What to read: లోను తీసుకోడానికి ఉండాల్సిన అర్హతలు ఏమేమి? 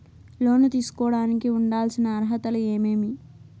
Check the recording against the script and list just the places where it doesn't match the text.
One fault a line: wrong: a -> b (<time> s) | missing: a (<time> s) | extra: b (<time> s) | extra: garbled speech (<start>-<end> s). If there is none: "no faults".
no faults